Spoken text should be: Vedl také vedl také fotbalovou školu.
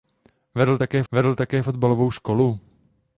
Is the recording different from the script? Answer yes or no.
no